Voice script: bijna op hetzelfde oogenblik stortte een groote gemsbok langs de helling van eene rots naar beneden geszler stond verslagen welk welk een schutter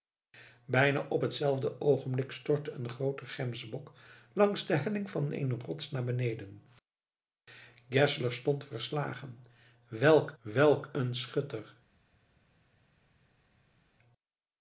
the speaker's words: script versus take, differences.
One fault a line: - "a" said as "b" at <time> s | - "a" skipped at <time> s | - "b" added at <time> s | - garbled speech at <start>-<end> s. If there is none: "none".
none